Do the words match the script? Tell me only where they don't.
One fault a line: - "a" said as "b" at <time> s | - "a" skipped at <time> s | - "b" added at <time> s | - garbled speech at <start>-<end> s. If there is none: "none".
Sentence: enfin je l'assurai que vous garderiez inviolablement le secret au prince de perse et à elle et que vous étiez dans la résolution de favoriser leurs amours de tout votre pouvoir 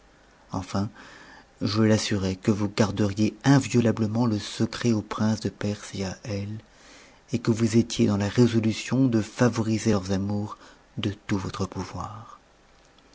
none